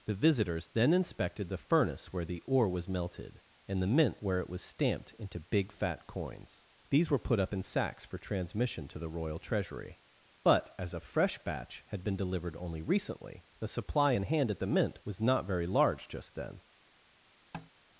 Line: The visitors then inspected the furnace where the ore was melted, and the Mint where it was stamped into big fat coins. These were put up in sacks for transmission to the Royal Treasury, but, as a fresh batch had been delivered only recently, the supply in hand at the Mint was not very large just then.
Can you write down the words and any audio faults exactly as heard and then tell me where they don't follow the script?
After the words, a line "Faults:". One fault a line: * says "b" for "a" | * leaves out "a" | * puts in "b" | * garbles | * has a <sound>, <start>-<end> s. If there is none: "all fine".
The visitors then inspected the furnace where the ore was melted, and the Mint where it was stamped into big fat coins. These were put up in sacks for transmission to the Royal Treasury, but, as a fresh batch had been delivered only recently, the supply in hand at the Mint was not very large just then.
Faults:
* has a tap, 17.5-17.7 s